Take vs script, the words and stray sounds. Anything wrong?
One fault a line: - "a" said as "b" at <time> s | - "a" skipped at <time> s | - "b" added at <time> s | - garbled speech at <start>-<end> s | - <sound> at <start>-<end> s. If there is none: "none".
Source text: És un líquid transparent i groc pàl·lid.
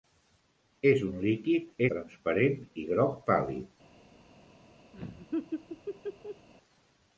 - laugh at 4.9-6.5 s